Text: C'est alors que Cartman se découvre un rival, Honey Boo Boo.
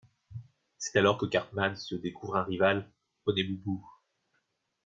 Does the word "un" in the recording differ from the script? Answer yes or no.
no